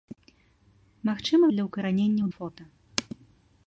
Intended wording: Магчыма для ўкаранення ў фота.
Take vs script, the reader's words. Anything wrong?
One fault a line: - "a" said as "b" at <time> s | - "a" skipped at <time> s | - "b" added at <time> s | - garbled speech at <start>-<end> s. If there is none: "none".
none